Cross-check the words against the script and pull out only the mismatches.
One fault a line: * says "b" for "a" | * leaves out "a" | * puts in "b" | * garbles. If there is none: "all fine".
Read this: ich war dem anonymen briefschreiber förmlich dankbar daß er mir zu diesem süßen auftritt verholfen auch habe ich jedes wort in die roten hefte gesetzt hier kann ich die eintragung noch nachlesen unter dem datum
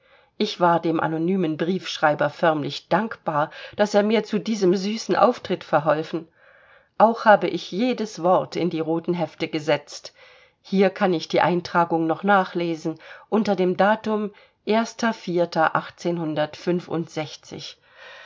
all fine